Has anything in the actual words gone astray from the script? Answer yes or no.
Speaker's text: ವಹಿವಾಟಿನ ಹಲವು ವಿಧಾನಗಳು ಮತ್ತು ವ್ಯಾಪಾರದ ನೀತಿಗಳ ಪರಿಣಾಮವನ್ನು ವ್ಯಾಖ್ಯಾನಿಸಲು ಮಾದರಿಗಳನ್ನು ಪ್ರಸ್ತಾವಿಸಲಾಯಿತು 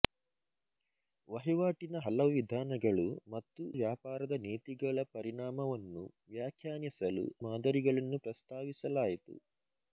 no